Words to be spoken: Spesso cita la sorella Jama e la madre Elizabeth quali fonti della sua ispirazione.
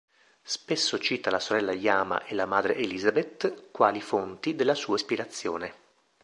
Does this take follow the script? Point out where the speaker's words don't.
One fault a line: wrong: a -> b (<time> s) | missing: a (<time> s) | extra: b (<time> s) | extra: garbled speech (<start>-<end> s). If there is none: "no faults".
no faults